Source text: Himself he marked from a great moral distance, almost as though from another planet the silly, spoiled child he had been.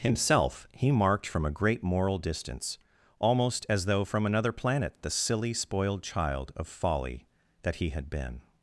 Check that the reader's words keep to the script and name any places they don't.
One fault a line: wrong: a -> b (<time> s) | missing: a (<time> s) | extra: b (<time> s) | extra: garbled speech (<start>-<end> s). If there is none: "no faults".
extra: of folly that (6.5 s)